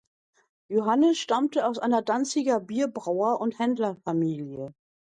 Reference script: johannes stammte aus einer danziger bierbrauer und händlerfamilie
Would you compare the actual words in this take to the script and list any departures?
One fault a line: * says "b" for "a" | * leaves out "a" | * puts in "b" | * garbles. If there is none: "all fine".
all fine